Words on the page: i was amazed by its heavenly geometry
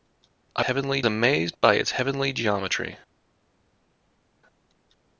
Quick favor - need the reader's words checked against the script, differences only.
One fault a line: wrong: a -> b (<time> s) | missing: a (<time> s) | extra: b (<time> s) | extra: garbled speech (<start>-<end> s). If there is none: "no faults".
wrong: was -> heavenly (0.6 s)